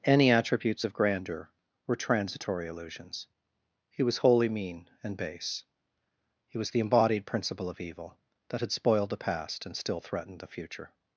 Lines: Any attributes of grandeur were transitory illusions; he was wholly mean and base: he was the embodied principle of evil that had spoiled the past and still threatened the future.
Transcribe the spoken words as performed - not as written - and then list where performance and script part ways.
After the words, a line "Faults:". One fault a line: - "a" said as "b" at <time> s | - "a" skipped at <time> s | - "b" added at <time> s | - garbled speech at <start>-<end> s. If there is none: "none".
Any attributes of grandeur were transitory illusions; he was wholly mean and base: he was the embodied principle of evil that had spoiled the past and still threatened the future.
Faults:
none